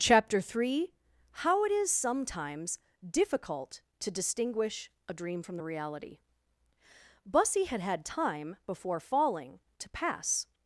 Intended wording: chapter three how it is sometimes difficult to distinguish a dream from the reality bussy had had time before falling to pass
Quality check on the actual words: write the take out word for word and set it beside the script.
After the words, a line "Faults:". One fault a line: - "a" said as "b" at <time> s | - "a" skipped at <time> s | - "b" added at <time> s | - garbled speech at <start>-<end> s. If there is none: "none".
chapter three how it is sometimes difficult to distinguish a dream from the reality bussy had had time before falling to pass
Faults:
none